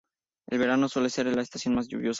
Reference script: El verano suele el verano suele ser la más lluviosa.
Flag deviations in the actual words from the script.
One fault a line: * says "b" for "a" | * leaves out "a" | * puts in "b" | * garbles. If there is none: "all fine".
* leaves out "el verano suele"
* puts in "estación"